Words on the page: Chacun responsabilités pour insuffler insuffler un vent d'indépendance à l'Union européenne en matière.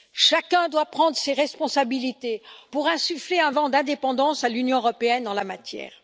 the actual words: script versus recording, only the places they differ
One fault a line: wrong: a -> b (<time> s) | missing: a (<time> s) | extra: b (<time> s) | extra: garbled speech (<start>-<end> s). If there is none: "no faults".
extra: doit prendre ses (0.7 s)
missing: insuffler (3.4 s)
extra: la (5.3 s)